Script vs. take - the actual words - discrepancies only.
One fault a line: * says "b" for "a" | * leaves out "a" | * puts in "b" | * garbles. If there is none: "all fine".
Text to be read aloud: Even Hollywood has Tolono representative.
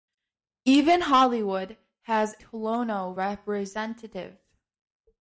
all fine